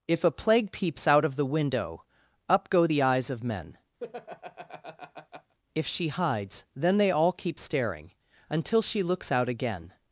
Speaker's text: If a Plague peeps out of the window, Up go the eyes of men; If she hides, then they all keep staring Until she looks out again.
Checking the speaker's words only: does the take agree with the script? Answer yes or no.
yes